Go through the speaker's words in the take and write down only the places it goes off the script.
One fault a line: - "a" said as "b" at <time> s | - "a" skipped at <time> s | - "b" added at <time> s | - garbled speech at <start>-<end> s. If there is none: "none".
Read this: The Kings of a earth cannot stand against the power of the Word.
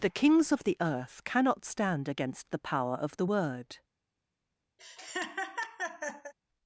- "a" said as "the" at 0.6 s